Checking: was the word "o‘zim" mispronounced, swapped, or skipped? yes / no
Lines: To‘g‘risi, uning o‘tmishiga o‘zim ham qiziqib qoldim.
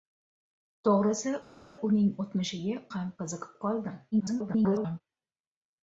yes